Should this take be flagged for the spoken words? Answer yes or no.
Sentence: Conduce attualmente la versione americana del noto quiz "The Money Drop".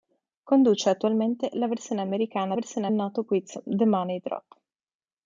yes